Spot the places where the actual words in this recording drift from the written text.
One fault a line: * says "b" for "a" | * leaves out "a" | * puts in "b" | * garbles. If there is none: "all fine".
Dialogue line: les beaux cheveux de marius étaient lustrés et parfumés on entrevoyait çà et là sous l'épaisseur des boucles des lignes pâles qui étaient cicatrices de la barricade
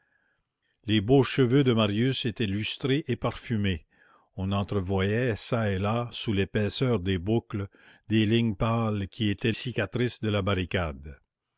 all fine